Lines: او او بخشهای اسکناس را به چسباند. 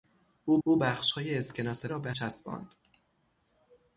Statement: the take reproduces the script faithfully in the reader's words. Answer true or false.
true